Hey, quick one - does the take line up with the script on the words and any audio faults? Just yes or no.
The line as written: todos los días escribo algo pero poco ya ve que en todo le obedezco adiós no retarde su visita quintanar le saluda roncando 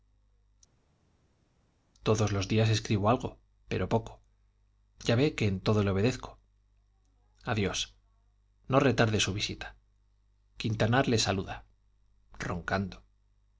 yes